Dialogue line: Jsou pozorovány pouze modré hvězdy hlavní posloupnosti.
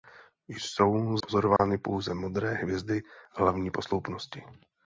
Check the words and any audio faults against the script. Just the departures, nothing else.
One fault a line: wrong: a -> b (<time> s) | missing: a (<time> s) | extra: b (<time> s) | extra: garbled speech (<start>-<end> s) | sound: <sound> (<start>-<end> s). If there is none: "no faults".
sound: dropout (1.6-1.6 s)